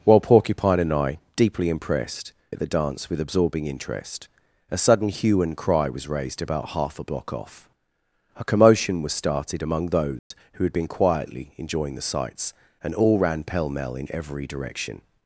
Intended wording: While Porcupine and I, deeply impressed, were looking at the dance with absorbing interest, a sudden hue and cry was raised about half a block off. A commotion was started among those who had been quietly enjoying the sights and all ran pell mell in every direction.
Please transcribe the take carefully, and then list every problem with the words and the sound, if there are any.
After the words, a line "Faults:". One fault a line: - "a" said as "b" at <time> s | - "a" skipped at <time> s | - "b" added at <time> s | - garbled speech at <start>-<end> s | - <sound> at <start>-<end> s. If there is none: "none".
While Porcupine and I, deeply impressed, at the dance with absorbing interest, a sudden hue and cry was raised about half a block off. A commotion was started among those who had been quietly enjoying the sights and all ran pell mell in every direction.
Faults:
- "were looking" skipped at 2.3 s
- dropout at 10.2-10.3 s